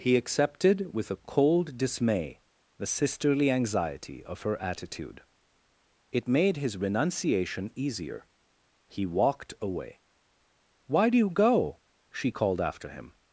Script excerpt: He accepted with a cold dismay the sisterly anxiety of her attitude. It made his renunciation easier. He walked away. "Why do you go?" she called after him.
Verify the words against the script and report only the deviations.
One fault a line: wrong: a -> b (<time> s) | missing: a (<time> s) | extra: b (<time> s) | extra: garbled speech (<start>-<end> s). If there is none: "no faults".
no faults